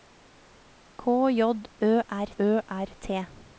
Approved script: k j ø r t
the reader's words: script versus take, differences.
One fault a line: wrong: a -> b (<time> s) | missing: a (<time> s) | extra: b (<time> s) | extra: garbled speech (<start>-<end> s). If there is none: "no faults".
extra: ø r (2.4 s)